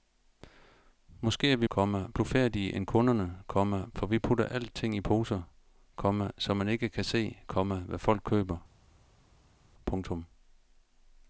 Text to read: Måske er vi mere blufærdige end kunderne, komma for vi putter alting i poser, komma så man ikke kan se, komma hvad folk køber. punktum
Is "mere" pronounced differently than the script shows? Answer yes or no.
yes